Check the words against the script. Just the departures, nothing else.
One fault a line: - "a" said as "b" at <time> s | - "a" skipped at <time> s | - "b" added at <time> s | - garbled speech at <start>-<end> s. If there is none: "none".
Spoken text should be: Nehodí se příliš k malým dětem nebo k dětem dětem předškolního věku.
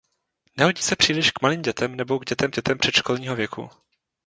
none